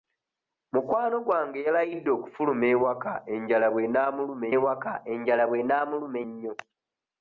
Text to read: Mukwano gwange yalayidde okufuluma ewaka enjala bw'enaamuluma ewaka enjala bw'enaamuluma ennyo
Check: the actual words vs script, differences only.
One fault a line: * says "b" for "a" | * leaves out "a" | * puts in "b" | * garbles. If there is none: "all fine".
all fine